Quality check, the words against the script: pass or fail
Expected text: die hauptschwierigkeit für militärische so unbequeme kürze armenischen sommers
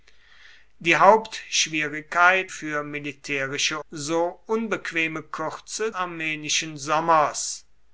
pass